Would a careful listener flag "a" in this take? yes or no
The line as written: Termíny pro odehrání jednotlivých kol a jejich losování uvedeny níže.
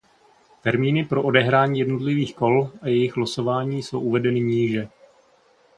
no